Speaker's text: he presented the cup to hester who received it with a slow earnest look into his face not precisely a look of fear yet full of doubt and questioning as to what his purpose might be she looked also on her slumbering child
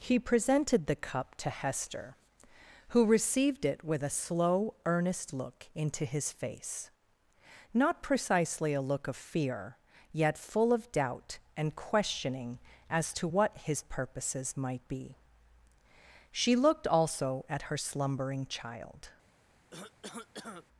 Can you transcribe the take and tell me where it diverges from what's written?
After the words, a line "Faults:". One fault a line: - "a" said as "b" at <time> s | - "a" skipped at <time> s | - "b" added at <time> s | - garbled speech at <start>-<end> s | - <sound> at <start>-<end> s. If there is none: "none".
he presented the cup to hester who received it with a slow earnest look into his face not precisely a look of fear yet full of doubt and questioning as to what his purposes might be she looked also at her slumbering child
Faults:
- "purpose" said as "purposes" at 13.8 s
- "on" said as "at" at 17.5 s
- cough at 19.7-20.7 s